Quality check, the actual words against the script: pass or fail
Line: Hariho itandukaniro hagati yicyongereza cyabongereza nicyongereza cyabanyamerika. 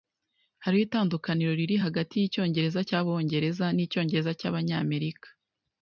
fail